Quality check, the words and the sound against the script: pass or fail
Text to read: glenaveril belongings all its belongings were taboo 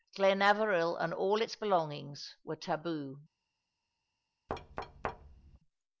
fail